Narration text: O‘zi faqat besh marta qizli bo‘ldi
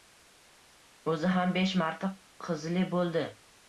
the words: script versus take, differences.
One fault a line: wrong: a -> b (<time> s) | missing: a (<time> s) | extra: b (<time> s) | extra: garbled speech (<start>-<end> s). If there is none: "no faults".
wrong: faqat -> ham (1.4 s)